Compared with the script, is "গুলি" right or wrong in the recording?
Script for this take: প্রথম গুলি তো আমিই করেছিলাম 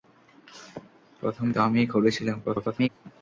wrong